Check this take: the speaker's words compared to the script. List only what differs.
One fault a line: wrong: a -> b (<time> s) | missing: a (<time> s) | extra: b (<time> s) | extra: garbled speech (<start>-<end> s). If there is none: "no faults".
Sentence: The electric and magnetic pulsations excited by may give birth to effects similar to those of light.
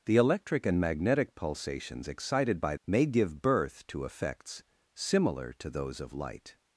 no faults